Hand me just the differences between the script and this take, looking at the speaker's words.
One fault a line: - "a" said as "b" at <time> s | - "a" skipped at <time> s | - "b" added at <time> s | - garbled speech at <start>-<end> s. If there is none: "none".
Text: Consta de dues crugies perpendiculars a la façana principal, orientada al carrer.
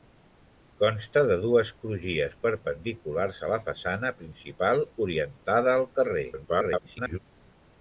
- garbled speech at 6.3-7.2 s